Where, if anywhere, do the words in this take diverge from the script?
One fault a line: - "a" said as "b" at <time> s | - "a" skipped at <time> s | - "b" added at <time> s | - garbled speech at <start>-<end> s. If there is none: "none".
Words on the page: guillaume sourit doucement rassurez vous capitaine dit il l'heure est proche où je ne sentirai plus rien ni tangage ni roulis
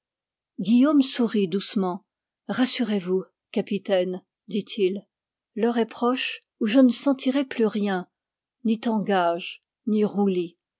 none